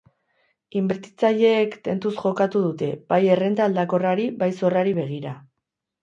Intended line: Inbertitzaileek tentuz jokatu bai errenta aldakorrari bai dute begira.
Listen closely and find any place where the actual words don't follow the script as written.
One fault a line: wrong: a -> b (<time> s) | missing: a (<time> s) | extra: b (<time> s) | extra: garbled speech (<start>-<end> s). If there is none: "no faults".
extra: dute (2.6 s)
wrong: dute -> zorrari (4.6 s)